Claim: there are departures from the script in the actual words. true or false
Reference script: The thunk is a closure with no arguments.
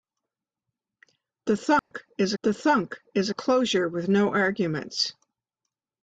true